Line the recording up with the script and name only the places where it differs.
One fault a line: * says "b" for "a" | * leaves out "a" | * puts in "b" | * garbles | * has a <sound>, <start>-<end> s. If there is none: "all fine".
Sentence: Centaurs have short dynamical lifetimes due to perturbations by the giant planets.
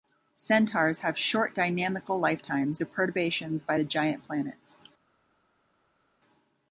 * leaves out "due"